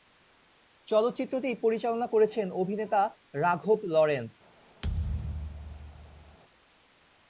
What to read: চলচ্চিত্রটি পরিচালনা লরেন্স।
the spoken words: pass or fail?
fail